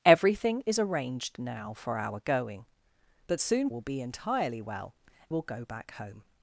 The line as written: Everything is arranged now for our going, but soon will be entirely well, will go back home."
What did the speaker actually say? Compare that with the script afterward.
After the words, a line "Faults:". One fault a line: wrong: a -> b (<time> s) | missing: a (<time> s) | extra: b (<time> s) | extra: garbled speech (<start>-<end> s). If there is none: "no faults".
Everything is arranged now for our going, but soon will be entirely well, will go back home."
Faults:
no faults